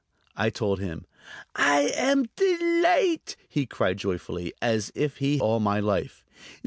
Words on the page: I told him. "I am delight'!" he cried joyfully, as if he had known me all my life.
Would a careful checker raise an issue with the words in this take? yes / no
yes